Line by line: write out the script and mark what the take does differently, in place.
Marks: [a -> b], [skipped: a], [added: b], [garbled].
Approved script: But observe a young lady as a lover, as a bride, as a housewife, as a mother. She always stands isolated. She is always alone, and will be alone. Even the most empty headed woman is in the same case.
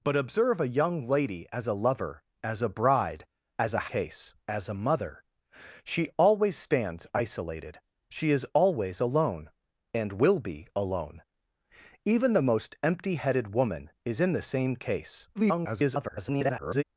But observe a young lady as a lover, as a bride, as a [housewife, -> case] as a mother. She always stands isolated. She is always alone, and will be alone. Even the most empty headed woman is in the same case. [garbled]